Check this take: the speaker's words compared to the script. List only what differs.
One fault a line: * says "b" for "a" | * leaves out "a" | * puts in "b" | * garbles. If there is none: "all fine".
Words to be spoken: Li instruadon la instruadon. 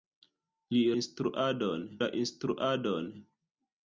all fine